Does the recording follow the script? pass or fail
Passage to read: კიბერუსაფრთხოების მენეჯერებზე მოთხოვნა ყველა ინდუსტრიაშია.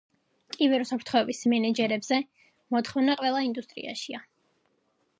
pass